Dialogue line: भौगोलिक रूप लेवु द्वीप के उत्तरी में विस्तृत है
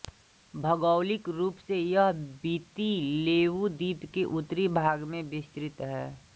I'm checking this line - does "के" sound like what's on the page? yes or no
yes